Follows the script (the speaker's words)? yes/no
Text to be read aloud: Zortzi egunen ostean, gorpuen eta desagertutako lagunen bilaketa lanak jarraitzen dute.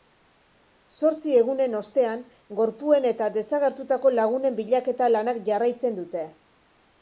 yes